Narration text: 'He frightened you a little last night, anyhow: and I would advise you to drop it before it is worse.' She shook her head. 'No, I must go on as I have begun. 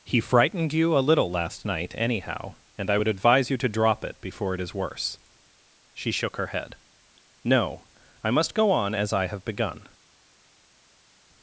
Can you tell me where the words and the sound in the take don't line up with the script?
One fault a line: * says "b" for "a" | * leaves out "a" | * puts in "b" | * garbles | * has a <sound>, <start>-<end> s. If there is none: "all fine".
all fine